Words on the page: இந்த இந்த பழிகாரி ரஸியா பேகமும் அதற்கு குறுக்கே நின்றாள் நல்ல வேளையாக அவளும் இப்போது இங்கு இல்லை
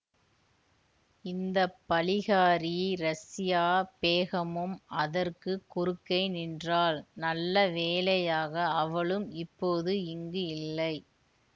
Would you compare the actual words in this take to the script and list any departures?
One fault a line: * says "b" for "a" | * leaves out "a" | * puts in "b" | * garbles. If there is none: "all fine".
* leaves out "இந்த"